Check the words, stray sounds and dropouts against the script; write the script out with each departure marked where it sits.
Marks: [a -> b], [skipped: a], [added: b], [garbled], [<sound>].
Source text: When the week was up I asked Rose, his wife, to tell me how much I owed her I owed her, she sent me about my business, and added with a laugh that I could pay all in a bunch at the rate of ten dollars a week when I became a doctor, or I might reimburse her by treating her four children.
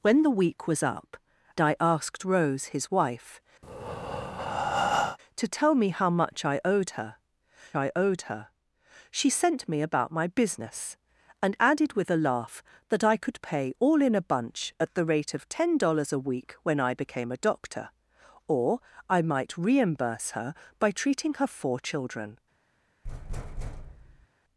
When the week was up I asked Rose, his wife, [breath] to tell me how much I owed her I owed her, she sent me about my business, and added with a laugh that I could pay all in a bunch at the rate of ten dollars a week when I became a doctor, or I might reimburse her by treating her four children. [thud]